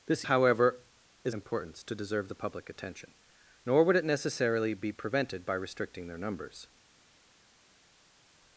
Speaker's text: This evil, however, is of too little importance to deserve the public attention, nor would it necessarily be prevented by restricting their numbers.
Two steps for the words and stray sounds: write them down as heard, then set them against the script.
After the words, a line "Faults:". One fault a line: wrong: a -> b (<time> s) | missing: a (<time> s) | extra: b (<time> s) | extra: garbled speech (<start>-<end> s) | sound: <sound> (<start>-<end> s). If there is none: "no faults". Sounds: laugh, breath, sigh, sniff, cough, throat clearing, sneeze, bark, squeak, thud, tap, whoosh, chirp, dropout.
This however, is importance to deserve the public attention, nor would it necessarily be prevented by restricting their numbers.
Faults:
missing: evil (0.2 s)
missing: of too little (1.3 s)